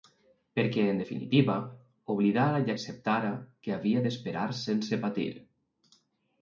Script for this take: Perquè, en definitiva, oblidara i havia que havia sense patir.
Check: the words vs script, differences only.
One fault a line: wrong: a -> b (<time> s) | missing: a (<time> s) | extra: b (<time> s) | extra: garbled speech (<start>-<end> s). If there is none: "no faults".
wrong: havia -> acceptara (2.7 s)
extra: d'esperar (4.1 s)